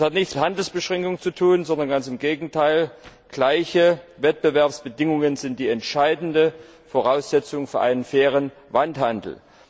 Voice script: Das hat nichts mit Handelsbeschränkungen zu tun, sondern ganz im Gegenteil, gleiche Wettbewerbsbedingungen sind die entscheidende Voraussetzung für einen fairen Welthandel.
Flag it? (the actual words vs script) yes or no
yes